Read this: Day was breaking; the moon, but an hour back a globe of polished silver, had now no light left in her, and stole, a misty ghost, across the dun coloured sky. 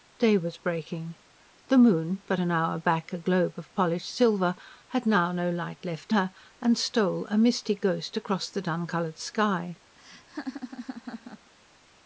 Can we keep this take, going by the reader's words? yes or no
no